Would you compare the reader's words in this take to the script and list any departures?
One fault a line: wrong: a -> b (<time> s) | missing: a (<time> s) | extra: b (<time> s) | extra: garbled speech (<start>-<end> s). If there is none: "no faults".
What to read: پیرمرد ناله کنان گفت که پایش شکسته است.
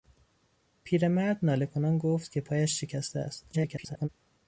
extra: garbled speech (3.5-4.1 s)